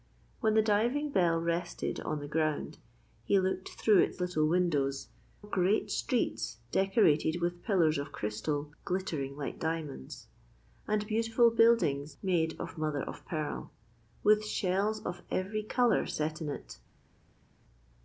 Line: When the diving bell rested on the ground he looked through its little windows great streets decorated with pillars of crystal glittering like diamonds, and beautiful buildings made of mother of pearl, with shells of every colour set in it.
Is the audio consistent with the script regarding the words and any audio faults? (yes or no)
yes